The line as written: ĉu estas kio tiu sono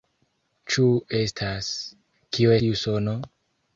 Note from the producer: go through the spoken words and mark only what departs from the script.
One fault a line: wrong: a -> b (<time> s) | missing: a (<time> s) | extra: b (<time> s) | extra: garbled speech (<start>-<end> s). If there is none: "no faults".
no faults